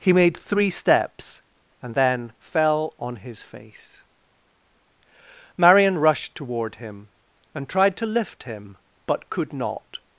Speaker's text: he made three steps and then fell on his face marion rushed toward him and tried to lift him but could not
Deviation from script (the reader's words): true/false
false